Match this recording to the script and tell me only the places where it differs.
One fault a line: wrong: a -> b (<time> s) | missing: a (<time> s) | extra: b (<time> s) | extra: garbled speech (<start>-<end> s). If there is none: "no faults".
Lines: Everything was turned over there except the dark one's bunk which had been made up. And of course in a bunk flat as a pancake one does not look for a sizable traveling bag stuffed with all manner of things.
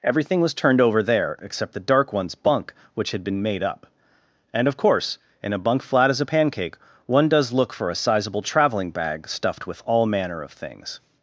missing: not (7.5 s)